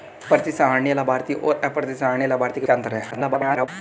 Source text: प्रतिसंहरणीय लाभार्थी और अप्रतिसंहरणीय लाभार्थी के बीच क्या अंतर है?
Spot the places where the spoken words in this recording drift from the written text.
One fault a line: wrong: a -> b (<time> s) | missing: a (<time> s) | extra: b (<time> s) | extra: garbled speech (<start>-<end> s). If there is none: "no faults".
missing: बीच (2.7 s)
extra: garbled speech (3.1-3.7 s)